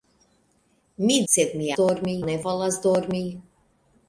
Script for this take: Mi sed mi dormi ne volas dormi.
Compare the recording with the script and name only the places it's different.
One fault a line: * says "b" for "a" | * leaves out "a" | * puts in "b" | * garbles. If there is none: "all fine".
all fine